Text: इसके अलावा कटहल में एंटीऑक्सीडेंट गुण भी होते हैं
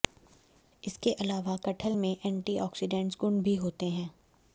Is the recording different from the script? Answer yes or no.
no